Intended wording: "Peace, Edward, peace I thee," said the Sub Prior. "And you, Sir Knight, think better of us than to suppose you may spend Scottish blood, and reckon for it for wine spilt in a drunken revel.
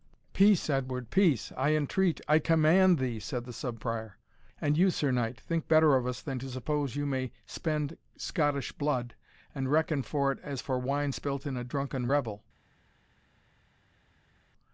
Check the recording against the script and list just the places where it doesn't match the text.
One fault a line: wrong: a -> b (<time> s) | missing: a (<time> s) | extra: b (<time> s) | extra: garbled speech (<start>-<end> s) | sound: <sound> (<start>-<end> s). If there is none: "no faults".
extra: entreat I command (1.8 s)
extra: as (10.4 s)